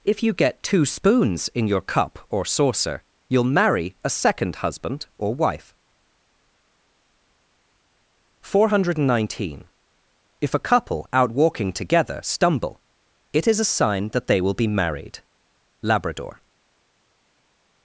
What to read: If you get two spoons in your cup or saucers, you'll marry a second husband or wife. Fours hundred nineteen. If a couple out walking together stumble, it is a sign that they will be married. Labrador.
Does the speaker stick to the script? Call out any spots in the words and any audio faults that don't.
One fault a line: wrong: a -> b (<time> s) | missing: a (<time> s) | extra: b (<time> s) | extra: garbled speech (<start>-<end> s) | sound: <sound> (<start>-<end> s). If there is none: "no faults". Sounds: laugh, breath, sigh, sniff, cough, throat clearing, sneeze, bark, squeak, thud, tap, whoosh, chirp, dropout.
wrong: saucers -> saucer (2.4 s)
wrong: Fours -> Four (8.4 s)